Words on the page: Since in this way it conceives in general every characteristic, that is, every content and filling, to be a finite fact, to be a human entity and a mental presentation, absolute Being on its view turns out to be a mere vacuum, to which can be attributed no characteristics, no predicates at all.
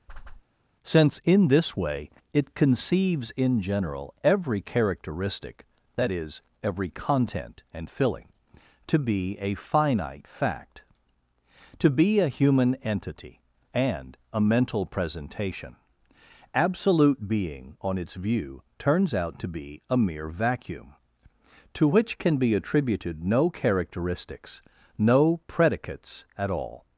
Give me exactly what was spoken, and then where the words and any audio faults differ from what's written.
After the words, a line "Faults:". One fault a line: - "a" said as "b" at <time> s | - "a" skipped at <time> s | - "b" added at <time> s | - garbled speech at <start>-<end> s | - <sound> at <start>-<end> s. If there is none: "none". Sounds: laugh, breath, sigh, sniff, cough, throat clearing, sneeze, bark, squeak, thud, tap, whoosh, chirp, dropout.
Since in this way it conceives in general every characteristic, that is, every content and filling, to be a finite fact, to be a human entity and a mental presentation, absolute Being on its view turns out to be a mere vacuum, to which can be attributed no characteristics, no predicates at all.
Faults:
- whoosh at 0.1-0.4 s